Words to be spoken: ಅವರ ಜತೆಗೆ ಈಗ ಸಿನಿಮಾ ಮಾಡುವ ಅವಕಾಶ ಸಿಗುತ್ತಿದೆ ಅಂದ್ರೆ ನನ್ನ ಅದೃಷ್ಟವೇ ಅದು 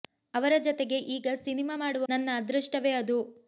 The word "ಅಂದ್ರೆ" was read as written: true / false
false